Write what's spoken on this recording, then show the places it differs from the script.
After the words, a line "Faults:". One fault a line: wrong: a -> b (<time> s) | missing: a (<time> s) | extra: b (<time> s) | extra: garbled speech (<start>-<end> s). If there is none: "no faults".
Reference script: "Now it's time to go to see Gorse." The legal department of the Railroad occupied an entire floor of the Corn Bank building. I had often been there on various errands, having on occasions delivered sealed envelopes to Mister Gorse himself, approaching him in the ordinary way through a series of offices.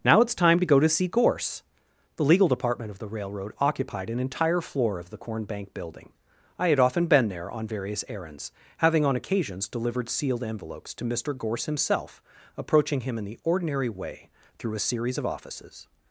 "Now it's time to go to see Gorse." The legal department of the Railroad occupied an entire floor of the Corn Bank building. I had often been there on various errands, having on occasions delivered sealed envelopes to Mister Gorse himself, approaching him in the ordinary way through a series of offices.
Faults:
no faults